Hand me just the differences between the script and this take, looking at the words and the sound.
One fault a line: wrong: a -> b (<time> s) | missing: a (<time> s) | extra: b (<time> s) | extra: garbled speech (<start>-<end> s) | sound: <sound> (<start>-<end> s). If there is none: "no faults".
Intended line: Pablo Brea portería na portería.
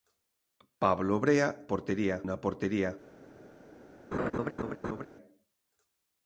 sound: laugh (4.1-5.1 s)